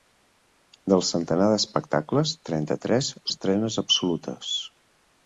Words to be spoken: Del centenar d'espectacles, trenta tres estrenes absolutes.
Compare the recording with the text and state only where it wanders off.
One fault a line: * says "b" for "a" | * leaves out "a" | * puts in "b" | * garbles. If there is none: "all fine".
all fine